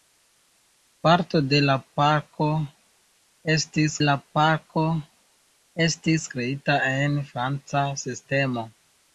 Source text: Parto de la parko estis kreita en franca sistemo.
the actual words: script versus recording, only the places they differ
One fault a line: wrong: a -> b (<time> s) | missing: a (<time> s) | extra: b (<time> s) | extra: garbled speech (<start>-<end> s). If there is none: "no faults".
extra: la parko estis (4.0 s)